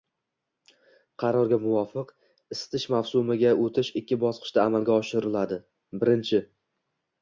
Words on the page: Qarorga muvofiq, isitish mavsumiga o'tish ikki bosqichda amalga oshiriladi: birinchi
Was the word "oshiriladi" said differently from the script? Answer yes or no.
no